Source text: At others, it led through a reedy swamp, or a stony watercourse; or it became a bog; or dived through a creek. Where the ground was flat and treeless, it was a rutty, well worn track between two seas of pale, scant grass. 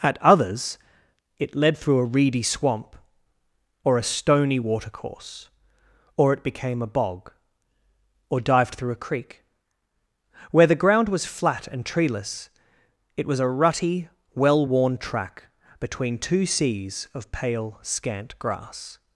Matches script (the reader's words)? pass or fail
pass